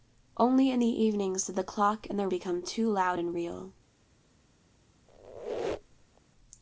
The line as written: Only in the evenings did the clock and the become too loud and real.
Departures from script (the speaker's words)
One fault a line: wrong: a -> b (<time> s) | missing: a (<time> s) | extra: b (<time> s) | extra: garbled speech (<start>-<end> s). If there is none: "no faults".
no faults